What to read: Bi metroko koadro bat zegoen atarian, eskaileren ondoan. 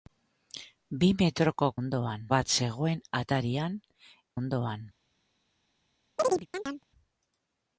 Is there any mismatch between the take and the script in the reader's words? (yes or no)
yes